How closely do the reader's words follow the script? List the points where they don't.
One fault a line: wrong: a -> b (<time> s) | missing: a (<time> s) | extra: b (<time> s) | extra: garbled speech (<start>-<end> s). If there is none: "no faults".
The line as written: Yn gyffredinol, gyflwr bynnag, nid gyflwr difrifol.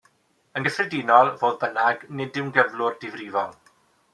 wrong: gyflwr -> fodd (1.4 s)
extra: yw'n (2.4 s)